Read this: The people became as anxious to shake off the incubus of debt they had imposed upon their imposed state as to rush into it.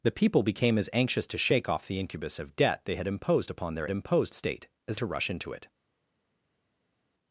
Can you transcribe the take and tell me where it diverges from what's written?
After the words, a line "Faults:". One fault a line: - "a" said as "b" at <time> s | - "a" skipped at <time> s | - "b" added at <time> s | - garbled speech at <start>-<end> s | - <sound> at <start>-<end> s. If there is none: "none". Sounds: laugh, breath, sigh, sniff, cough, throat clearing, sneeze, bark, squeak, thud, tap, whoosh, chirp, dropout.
The people became as anxious to shake off the incubus of debt they had imposed upon their imposed state as to rush into it.
Faults:
none